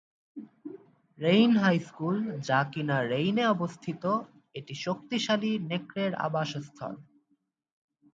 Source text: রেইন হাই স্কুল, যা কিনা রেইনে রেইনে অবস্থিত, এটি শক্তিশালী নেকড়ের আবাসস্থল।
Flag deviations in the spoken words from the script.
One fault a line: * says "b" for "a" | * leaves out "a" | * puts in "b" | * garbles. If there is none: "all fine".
* leaves out "রেইনে"